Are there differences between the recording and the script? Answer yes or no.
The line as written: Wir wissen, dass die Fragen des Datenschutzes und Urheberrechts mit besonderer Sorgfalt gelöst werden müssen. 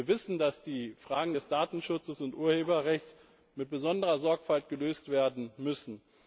no